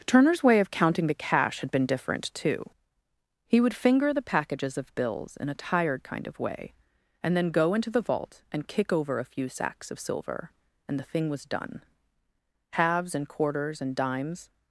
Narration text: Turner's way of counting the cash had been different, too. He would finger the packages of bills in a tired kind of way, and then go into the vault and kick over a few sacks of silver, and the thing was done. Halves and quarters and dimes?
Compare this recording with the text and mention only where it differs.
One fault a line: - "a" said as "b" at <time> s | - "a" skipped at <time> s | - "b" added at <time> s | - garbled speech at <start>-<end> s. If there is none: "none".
none